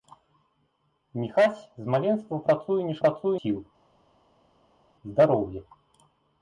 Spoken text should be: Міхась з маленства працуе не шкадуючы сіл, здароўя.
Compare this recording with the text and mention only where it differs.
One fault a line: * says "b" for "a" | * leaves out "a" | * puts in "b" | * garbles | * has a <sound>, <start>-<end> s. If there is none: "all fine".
* says "працуе" for "шкадуючы"